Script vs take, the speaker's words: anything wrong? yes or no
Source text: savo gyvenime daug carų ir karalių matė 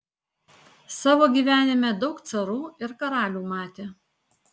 no